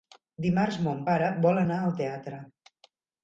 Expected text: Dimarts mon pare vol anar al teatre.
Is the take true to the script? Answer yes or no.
yes